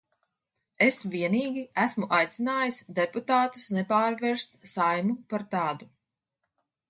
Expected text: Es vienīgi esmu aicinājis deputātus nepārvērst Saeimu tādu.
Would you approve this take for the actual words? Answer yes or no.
no